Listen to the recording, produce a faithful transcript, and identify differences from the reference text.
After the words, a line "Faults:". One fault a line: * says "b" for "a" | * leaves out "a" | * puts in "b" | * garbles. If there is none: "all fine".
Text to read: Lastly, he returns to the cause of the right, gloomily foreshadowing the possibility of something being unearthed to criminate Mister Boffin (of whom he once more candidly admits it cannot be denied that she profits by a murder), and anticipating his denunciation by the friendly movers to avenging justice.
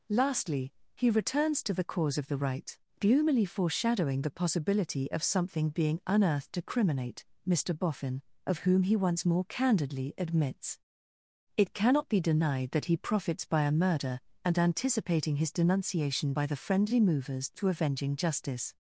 Lastly, he returns to the cause of the right, gloomily foreshadowing the possibility of something being unearthed to criminate Mister Boffin (of whom he once more candidly admits it cannot be denied that he profits by a murder), and anticipating his denunciation by the friendly movers to avenging justice.
Faults:
* says "he" for "she"